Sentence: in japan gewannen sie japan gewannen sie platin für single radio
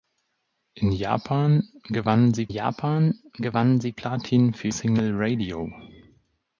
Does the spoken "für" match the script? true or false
true